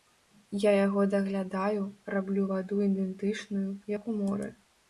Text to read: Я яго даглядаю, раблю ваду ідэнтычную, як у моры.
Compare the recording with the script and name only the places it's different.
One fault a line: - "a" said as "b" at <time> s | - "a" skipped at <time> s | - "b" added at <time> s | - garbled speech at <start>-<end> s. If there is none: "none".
none